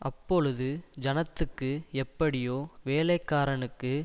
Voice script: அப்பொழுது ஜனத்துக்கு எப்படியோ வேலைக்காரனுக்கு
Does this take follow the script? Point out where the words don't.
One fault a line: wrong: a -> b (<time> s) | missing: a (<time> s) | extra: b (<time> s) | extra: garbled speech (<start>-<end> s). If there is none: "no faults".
no faults